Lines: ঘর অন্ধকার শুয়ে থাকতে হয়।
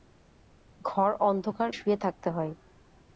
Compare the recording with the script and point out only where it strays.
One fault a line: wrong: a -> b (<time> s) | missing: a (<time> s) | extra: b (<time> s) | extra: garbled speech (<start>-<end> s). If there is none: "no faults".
no faults